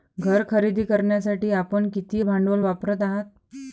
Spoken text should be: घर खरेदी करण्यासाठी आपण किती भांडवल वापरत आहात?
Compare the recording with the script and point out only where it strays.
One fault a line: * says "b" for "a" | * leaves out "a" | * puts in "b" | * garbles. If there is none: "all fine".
all fine